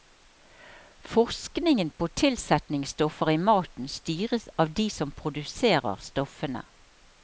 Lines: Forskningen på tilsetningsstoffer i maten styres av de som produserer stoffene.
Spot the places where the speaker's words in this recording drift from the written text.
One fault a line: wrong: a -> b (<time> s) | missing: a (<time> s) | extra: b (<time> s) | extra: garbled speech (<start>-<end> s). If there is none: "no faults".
no faults